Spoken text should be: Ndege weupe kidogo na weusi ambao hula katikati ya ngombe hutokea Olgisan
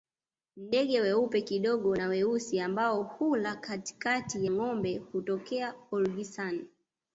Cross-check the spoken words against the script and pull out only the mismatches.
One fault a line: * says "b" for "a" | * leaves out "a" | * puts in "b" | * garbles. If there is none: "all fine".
* leaves out "ya"